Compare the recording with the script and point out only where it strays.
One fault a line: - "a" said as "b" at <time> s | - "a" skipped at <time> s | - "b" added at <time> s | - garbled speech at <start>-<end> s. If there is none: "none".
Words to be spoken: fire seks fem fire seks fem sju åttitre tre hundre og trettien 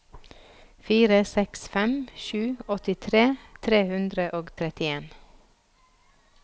- "fire seks fem" skipped at 1.9 s